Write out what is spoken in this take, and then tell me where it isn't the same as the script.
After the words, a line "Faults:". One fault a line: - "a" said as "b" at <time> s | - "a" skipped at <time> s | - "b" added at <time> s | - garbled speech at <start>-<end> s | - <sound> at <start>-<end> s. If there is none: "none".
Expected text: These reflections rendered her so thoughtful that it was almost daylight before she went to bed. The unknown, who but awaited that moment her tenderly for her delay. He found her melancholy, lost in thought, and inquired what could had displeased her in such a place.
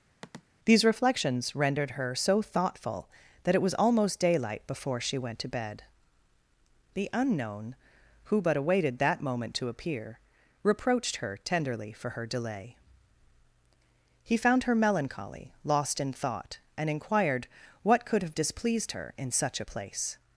These reflections rendered her so thoughtful that it was almost daylight before she went to bed. The unknown, who but awaited that moment to appear, reproached her tenderly for her delay. He found her melancholy, lost in thought, and inquired what could have displeased her in such a place.
Faults:
- sniff at 0.2-0.4 s
- "to appear reproached" added at 9.6 s
- "had" said as "have" at 18.2 s